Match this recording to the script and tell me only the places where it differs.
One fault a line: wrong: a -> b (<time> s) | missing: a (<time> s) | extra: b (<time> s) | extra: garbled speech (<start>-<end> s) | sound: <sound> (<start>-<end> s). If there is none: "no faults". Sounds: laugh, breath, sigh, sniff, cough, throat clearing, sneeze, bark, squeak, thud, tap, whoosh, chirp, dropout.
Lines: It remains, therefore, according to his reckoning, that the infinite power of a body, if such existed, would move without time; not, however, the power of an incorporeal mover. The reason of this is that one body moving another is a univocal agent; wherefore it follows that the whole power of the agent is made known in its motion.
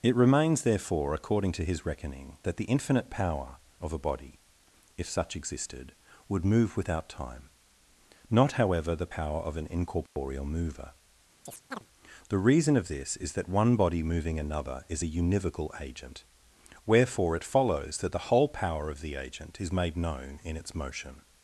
sound: dropout (10.1-10.2 s)
sound: chirp (11.5-11.9 s)